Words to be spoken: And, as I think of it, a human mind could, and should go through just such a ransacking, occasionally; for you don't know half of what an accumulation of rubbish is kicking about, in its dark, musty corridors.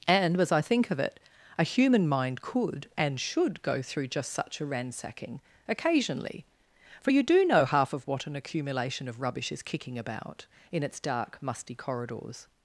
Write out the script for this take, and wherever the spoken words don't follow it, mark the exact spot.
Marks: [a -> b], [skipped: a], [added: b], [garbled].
And, as I think of it, a human mind could, and should go through just such a ransacking, occasionally; for you [don't -> do] know half of what an accumulation of rubbish is kicking about, in its dark, musty corridors.